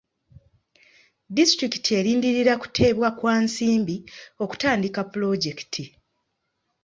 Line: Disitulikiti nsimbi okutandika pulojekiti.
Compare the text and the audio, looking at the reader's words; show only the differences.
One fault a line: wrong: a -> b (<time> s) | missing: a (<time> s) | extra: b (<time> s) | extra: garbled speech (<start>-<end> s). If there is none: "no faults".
extra: erindirira kuteebwa kwa (2.0 s)